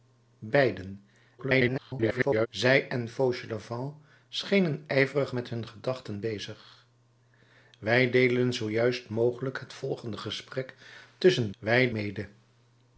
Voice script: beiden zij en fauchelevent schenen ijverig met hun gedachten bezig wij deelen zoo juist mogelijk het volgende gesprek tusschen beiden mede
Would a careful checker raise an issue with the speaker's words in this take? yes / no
yes